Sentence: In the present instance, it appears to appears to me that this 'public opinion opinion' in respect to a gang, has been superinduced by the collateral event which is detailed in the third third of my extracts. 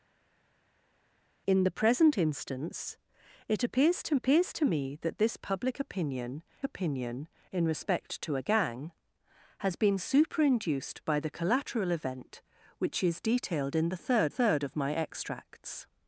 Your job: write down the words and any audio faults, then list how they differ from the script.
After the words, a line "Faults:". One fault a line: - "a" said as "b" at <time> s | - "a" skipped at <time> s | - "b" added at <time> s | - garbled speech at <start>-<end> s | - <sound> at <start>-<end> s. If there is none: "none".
In the present instance, it appears to appears to me that this 'public opinion opinion' in respect to a gang, has been superinduced by the collateral event which is detailed in the third third of my extracts.
Faults:
none